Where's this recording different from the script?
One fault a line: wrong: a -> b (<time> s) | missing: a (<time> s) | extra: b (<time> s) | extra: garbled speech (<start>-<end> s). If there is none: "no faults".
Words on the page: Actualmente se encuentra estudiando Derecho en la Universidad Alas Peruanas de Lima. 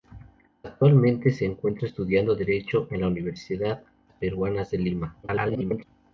missing: Alas (3.8 s)
extra: garbled speech (5.2-5.8 s)